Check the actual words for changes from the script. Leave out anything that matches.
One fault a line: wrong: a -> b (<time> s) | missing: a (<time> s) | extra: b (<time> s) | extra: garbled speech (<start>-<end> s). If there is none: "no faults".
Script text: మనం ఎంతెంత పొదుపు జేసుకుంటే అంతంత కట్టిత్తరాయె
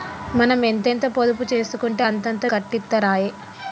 no faults